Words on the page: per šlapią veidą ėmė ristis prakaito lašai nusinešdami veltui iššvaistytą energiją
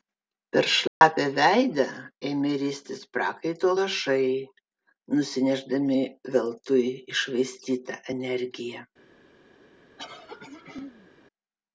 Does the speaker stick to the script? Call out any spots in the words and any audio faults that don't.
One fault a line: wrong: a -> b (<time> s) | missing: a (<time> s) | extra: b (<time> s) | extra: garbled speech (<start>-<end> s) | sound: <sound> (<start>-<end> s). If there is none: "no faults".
sound: dropout (0.9-1.0 s)
sound: throat clearing (10.0-11.1 s)